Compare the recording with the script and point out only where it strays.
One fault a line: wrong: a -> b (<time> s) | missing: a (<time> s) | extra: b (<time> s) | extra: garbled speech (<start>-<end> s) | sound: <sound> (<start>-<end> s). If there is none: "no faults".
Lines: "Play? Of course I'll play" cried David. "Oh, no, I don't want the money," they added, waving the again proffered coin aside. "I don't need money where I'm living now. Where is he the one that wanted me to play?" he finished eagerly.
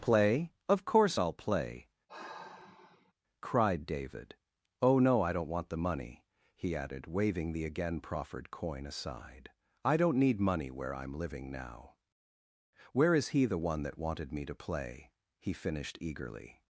sound: sigh (2.1-3.1 s)
wrong: they -> he (6.6 s)